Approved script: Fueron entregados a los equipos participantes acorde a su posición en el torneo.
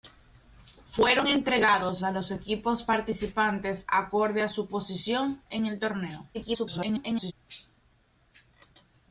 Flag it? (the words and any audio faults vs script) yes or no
yes